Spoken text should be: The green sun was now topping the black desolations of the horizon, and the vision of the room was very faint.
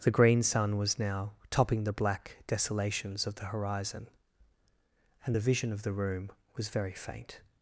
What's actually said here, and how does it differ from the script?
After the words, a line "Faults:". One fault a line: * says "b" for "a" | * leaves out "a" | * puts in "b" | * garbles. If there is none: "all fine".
The green sun was now topping the black desolations of the horizon, and the vision of the room was very faint.
Faults:
all fine